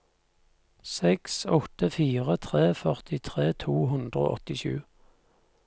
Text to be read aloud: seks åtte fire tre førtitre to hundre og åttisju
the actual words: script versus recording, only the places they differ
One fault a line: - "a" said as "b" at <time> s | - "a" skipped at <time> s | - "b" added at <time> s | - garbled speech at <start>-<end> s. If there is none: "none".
none